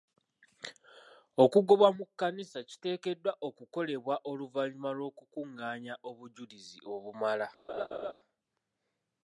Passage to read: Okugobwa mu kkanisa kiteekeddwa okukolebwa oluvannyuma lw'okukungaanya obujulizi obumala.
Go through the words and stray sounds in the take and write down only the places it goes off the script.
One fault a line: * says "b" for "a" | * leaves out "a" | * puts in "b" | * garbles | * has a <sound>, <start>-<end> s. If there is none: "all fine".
* has a laugh, 7.7-8.1 s